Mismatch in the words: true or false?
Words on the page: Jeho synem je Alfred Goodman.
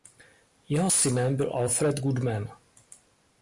true